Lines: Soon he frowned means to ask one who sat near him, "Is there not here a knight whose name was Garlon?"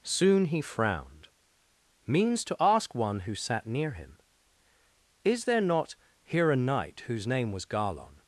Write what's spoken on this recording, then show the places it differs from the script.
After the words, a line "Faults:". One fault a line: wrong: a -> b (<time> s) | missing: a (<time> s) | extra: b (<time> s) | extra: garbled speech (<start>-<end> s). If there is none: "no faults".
Soon he frowned means to ask one who sat near him, "Is there not here a knight whose name was Garlon?"
Faults:
no faults